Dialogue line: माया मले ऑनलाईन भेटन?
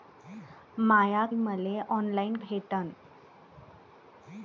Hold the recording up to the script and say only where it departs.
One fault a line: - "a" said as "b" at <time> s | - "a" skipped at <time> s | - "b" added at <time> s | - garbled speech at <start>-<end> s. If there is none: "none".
none